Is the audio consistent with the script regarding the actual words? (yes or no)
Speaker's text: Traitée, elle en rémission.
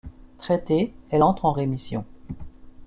no